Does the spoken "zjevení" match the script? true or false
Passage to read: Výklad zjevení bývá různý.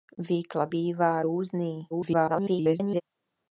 false